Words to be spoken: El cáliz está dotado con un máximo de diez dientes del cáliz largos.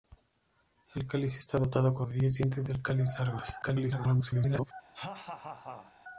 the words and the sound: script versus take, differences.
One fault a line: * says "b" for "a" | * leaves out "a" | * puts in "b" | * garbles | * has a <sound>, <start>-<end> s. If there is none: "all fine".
* leaves out "un máximo"
* garbles
* has a laugh, 4.9-5.9 s